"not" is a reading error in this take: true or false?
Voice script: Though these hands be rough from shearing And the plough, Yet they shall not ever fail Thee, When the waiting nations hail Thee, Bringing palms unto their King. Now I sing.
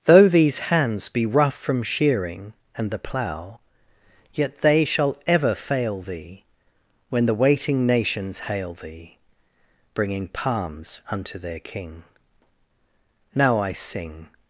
true